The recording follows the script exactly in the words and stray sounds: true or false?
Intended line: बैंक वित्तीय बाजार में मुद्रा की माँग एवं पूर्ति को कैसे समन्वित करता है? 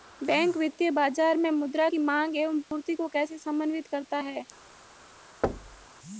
false